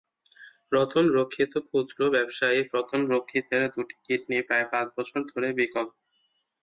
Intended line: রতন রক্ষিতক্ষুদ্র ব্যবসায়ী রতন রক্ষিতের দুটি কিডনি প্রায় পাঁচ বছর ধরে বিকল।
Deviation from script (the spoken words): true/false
false